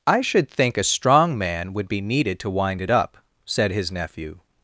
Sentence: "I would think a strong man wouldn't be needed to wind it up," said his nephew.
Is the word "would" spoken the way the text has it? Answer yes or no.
no